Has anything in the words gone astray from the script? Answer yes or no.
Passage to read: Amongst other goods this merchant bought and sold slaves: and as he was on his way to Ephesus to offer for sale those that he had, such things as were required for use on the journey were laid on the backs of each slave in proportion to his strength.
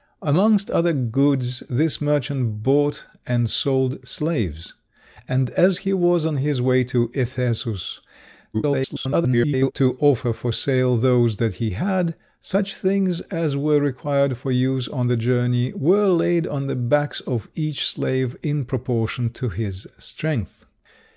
yes